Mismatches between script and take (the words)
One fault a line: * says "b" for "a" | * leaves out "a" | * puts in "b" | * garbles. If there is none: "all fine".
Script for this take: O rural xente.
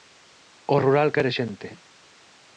* puts in "quere"